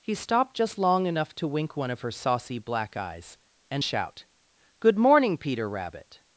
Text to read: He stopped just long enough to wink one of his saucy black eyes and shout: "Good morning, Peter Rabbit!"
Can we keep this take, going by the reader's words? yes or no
no